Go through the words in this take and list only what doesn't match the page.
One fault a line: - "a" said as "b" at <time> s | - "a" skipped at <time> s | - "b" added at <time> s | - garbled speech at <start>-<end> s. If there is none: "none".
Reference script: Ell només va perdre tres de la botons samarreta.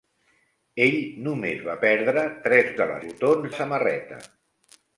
none